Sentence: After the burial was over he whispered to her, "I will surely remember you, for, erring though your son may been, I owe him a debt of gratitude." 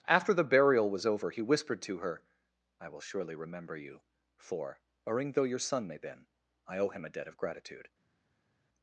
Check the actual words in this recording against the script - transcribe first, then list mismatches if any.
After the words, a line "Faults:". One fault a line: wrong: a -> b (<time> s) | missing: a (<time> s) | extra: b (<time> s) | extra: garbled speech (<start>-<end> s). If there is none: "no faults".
After the burial was over he whispered to her, "I will surely remember you, for, erring though your son may been, I owe him a debt of gratitude."
Faults:
no faults